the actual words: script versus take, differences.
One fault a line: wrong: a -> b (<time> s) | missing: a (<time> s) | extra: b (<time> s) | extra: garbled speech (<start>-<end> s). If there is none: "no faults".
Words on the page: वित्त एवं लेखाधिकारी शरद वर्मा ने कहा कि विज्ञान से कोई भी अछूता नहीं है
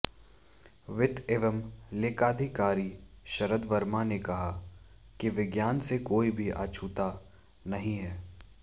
no faults